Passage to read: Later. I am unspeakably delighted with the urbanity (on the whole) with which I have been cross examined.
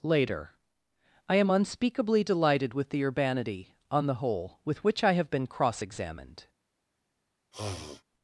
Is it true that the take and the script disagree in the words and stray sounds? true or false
true